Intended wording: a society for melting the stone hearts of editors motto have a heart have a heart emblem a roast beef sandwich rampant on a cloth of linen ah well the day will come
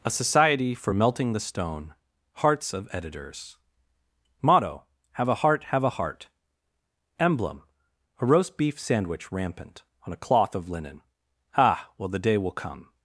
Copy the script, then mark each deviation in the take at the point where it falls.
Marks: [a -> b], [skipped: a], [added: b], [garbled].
a society for melting the stone hearts of editors motto have a heart have a heart emblem a roast beef sandwich rampant on a cloth of linen ah well the day will come